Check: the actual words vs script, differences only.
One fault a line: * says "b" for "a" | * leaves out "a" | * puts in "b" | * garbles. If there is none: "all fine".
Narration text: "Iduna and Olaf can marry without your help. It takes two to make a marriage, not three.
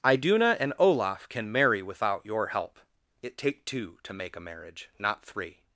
* says "take" for "takes"